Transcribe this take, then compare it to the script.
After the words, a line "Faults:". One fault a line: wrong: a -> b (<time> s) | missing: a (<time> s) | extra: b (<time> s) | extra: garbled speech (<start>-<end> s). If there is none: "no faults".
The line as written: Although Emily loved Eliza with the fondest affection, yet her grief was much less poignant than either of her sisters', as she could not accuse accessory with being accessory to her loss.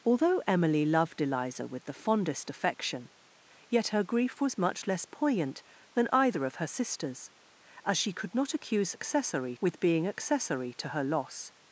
Although Emily loved Eliza with the fondest affection, yet her grief was much less poignant than either of her sisters', as she could not accuse accessory with being accessory to her loss.
Faults:
no faults